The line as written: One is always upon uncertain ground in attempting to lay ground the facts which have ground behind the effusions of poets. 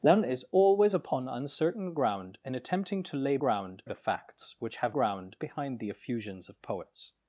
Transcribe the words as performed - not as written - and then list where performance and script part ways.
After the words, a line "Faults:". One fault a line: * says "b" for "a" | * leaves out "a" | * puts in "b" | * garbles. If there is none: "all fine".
One is always upon uncertain ground in attempting to lay ground the facts which have ground behind the effusions of poets.
Faults:
all fine